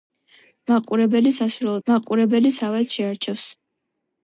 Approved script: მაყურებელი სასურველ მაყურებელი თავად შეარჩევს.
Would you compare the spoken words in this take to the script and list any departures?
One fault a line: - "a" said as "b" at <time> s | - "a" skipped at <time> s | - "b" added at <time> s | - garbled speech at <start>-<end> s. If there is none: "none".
none